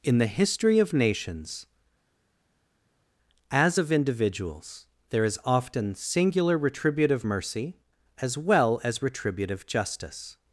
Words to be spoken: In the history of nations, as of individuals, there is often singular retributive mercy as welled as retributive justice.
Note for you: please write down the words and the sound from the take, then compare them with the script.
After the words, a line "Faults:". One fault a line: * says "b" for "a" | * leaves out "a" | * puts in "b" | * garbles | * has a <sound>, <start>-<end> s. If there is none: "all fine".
In the history of nations, as of individuals, there is often singular retributive mercy as well as retributive justice.
Faults:
* says "well" for "welled"